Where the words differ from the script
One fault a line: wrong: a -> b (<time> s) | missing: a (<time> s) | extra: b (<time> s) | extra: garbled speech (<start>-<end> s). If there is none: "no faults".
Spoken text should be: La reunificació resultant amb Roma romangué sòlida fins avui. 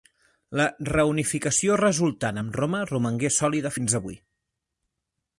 no faults